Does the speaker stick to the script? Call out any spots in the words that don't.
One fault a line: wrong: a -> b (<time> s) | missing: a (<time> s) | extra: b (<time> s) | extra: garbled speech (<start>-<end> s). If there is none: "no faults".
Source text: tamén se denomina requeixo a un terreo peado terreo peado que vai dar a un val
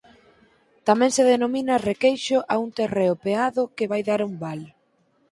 missing: terreo peado (3.6 s)